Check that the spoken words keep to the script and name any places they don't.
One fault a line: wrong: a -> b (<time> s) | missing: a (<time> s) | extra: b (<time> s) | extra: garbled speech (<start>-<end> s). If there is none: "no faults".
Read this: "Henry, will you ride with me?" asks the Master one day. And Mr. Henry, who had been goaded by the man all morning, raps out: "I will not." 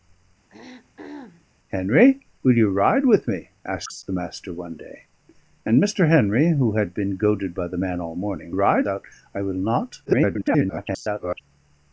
wrong: raps -> ride (8.5 s)
extra: garbled speech (10.0-11.4 s)